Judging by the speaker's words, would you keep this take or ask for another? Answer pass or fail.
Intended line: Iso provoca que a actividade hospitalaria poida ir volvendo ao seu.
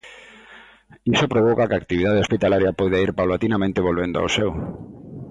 fail